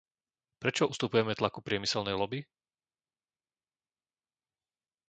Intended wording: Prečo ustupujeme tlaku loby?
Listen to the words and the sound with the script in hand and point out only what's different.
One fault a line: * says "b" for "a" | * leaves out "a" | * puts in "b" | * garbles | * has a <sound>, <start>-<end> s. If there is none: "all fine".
* puts in "priemyselnej"